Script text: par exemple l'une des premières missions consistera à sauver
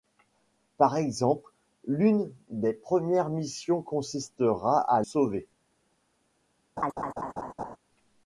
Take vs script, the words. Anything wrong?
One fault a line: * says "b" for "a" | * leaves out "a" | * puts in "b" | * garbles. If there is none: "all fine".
all fine